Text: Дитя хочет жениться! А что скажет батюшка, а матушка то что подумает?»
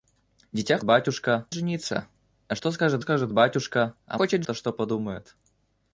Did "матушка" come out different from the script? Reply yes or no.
yes